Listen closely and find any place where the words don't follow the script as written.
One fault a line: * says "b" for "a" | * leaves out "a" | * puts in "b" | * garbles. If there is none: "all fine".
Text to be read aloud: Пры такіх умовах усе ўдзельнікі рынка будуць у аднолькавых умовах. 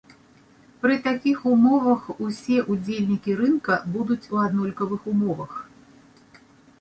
all fine